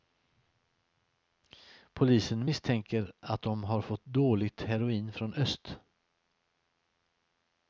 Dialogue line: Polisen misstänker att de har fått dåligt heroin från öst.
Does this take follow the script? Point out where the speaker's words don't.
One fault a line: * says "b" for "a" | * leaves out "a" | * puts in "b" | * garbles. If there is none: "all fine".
all fine